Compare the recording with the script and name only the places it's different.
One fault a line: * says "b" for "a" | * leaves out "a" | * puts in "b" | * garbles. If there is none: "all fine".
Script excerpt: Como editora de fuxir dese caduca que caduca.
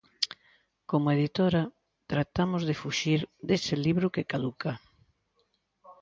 * puts in "tratamos"
* says "libro" for "caduca"